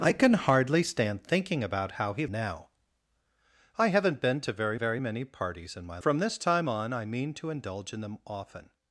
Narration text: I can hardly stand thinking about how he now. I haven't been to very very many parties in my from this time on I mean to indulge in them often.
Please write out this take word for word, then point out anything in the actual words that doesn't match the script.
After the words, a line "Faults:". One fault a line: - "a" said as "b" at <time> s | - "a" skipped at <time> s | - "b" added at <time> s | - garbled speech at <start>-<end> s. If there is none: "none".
I can hardly stand thinking about how he now. I haven't been to very very many parties in my from this time on I mean to indulge in them often.
Faults:
none